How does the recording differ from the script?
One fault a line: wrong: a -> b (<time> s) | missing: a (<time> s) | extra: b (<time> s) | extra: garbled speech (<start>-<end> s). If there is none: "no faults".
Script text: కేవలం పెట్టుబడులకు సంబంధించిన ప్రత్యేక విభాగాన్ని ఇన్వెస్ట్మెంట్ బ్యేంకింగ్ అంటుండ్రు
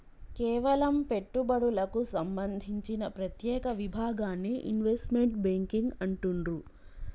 no faults